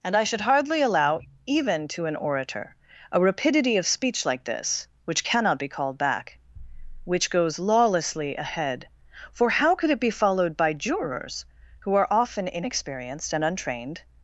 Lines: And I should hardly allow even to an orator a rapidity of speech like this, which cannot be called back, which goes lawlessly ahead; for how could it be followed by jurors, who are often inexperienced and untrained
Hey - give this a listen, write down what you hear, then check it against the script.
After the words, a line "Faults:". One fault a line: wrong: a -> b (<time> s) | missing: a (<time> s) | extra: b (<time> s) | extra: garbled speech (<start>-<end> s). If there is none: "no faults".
And I should hardly allow even to an orator a rapidity of speech like this, which cannot be called back, which goes lawlessly ahead; for how could it be followed by jurors, who are often inexperienced and untrained
Faults:
no faults